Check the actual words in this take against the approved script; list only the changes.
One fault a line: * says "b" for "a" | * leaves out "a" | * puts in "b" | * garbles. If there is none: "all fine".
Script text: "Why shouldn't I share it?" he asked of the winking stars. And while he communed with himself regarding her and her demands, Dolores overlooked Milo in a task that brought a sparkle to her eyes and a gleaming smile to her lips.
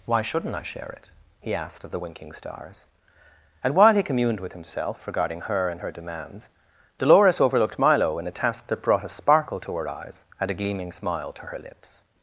all fine